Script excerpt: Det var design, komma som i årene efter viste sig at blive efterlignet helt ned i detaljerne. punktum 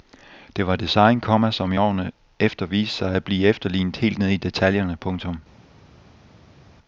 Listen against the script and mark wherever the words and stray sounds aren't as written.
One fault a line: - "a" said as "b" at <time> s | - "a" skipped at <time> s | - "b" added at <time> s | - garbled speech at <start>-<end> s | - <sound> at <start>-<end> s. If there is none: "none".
none